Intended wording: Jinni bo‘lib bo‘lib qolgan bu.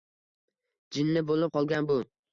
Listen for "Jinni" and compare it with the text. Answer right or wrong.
right